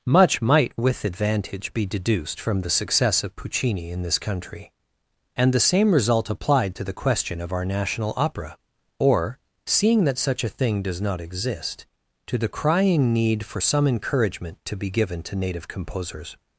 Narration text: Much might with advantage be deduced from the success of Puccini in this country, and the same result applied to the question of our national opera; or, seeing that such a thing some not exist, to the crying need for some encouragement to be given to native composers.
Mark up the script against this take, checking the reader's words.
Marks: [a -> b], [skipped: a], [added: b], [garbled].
Much might with advantage be deduced from the success of Puccini in this country, and the same result applied to the question of our national opera; or, seeing that such a thing [some -> does] not exist, to the crying need for some encouragement to be given to native composers.